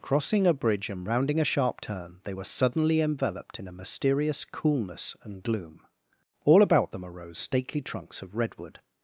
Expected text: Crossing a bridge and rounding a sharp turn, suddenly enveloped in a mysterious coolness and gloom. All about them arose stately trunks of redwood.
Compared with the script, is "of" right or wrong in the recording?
right